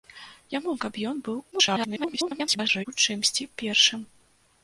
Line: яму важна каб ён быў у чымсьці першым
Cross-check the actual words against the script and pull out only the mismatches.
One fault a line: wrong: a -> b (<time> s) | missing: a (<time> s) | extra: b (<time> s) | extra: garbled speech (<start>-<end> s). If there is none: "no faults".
missing: важна (0.7 s)
extra: garbled speech (1.5-2.9 s)